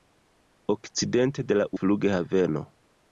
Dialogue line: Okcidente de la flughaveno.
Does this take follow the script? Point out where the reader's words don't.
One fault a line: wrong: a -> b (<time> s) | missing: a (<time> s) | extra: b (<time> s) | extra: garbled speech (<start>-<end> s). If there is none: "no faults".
no faults